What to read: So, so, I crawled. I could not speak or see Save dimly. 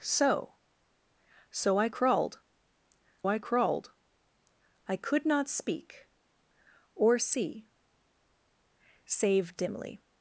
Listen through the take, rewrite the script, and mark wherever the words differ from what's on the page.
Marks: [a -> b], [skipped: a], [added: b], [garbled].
So, so, I crawled. I [added: crawled I] could not speak or see Save dimly.